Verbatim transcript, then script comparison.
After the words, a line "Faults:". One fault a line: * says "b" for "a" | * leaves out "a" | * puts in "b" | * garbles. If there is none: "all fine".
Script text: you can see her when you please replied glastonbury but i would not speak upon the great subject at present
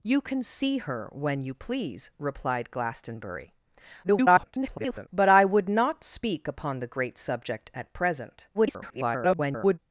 you can see her when you please replied glastonbury [garbled] but i would not speak upon the great subject at present [garbled]
Faults:
* garbles
* garbles